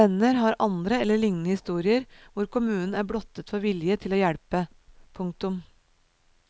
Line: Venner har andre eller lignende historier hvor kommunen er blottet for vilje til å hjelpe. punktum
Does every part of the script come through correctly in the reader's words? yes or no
yes